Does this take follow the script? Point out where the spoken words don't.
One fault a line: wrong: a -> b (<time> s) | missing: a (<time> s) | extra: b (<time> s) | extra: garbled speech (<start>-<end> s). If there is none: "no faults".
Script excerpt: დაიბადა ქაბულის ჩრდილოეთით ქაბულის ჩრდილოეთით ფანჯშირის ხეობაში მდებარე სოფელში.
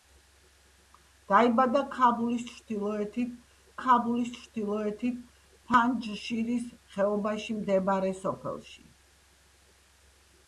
no faults